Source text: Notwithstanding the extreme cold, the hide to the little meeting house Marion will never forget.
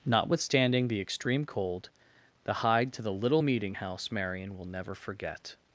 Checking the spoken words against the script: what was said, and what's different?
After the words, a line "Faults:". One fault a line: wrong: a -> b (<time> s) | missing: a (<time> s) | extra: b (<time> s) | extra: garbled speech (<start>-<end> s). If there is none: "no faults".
Notwithstanding the extreme cold, the hide to the little meeting house Marion will never forget.
Faults:
no faults